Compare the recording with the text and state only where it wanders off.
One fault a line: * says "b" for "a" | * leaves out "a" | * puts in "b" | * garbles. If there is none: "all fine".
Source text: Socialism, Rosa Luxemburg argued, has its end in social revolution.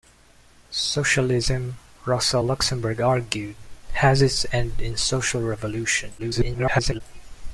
* garbles